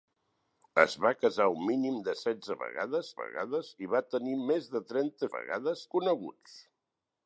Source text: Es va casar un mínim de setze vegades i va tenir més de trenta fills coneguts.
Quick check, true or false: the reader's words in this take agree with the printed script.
false